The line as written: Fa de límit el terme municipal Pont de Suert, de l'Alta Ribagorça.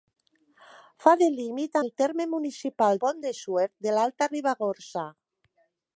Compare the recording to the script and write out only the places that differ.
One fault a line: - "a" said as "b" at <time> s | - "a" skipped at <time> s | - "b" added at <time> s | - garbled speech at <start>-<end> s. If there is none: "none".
none